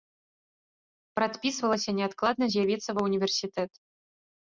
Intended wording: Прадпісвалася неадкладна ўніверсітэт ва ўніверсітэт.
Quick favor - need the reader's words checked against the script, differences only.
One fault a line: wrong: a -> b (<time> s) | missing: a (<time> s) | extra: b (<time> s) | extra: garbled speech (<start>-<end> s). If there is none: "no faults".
wrong: ўніверсітэт -> з'явіцца (2.5 s)